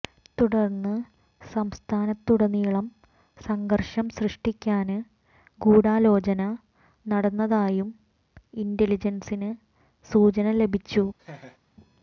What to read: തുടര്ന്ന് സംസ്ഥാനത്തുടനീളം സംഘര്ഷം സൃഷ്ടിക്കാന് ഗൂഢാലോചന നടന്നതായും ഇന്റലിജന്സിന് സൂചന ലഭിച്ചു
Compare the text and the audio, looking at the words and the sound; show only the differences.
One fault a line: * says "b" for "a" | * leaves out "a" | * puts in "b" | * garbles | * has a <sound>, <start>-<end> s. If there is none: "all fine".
* has a laugh, 11.2-11.6 s